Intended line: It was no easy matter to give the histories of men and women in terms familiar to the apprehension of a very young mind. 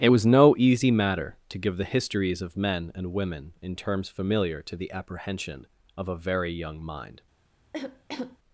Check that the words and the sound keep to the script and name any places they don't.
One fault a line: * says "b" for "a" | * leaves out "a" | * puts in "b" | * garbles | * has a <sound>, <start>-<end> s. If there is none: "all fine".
* has a cough, 7.7-8.4 s